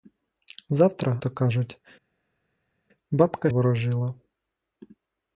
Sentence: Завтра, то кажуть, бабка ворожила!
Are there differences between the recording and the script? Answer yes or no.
no